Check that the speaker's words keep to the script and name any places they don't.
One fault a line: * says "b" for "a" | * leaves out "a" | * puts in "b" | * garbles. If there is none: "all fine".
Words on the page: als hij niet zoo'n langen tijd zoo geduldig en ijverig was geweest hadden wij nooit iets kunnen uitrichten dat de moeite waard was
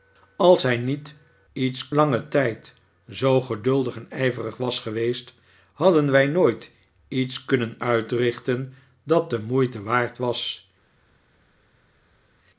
* says "iets" for "zoo'n"